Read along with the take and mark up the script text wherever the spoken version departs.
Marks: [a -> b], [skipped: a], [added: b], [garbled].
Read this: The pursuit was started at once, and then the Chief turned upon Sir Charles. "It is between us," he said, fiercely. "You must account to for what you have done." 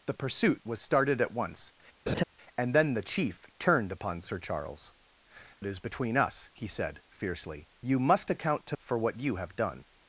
The pursuit was started at once, and then the Chief turned upon Sir Charles. "It is between us," he said, fiercely. "You must account to for what you have done."